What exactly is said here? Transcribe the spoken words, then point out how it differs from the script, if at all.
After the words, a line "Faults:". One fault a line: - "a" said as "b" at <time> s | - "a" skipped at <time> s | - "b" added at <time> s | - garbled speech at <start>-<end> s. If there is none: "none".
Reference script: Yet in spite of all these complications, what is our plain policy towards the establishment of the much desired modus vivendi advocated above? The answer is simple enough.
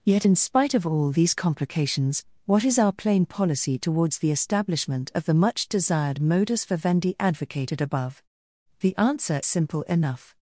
Yet in spite of all these complications, what is our plain policy towards the establishment of the much desired modus vivendi advocated above? The answer simple enough.
Faults:
- "is" skipped at 9.4 s